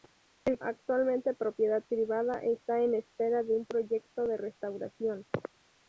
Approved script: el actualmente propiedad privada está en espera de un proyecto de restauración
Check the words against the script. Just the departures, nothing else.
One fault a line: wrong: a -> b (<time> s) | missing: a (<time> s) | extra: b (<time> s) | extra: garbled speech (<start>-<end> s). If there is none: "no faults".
no faults